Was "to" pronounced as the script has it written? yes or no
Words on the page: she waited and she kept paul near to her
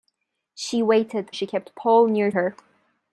no